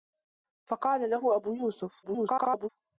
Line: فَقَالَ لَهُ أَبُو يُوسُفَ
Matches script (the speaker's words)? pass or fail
fail